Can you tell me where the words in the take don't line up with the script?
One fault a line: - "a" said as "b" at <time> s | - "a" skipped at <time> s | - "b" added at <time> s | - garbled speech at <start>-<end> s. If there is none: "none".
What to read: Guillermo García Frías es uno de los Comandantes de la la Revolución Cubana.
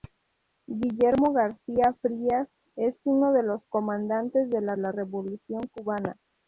none